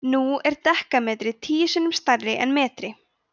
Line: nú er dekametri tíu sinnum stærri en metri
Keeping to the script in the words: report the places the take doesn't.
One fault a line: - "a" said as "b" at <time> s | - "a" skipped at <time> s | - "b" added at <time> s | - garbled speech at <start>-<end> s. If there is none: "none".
none